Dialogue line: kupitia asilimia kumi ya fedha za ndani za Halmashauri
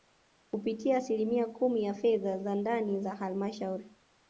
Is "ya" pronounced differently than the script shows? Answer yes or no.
no